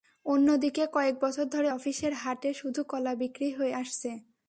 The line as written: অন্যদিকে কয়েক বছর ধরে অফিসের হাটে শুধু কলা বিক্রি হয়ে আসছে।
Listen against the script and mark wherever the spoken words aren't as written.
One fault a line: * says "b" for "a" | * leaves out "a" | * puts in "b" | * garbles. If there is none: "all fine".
all fine